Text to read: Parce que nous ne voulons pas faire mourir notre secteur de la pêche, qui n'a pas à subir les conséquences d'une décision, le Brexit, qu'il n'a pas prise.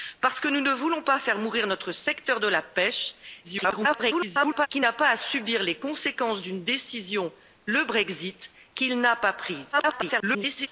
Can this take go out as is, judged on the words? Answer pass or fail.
fail